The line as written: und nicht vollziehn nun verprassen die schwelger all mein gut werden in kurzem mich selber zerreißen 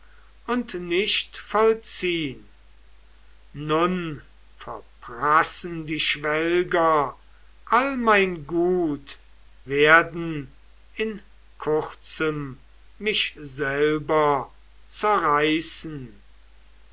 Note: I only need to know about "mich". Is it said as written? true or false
true